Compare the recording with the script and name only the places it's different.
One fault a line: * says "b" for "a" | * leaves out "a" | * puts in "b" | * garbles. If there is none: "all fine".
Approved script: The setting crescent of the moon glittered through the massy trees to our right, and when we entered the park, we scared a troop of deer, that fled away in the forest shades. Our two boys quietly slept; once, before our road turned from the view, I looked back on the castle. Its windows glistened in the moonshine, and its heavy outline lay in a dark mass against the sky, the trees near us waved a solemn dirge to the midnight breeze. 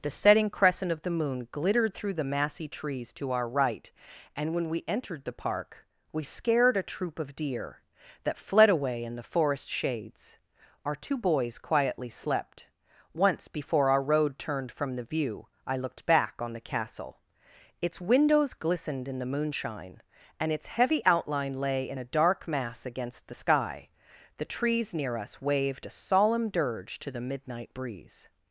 all fine